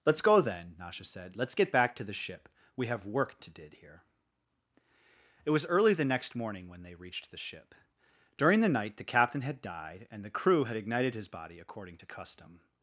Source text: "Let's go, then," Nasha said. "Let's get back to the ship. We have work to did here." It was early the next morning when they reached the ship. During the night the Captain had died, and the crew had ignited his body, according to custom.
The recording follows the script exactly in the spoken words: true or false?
true